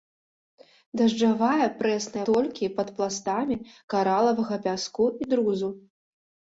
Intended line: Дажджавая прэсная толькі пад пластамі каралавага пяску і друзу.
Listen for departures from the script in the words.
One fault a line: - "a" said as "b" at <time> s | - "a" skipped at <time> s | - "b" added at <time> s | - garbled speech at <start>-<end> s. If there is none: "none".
none